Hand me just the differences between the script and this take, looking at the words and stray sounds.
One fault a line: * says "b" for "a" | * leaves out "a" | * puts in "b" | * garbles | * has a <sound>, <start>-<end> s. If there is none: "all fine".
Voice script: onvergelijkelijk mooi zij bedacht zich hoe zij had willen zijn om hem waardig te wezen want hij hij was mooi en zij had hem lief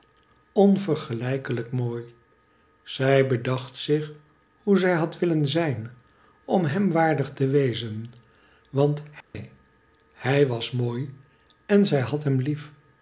* has a dropout, 9.2-9.3 s